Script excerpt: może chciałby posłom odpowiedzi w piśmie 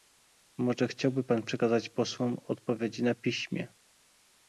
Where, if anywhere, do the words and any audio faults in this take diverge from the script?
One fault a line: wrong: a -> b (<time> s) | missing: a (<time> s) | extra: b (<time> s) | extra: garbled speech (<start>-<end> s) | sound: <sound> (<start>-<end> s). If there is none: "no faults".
extra: pan przekazać (1.2 s)
wrong: w -> na (3.0 s)